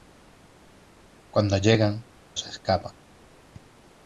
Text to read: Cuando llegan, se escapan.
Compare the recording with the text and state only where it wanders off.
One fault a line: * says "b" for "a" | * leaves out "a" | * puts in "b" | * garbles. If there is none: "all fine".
all fine